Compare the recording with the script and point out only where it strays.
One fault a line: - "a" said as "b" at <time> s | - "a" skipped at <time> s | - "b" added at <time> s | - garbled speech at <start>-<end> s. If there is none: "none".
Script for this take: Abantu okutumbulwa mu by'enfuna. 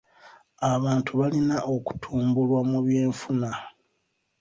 - "balina" added at 1.2 s